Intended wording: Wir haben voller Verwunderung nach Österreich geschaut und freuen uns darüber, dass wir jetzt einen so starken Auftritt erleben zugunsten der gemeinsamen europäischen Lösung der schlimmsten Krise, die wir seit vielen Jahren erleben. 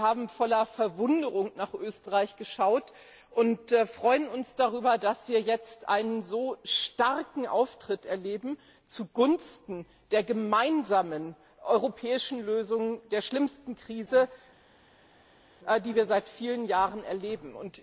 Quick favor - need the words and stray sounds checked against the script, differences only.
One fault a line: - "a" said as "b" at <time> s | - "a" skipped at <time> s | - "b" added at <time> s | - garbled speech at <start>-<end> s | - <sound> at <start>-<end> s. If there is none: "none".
none